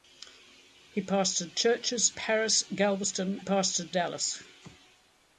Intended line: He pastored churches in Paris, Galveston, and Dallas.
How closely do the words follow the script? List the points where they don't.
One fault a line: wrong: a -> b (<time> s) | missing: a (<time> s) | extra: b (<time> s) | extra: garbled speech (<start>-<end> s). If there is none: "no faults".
missing: in (2.2 s)
wrong: and -> pastored (3.4 s)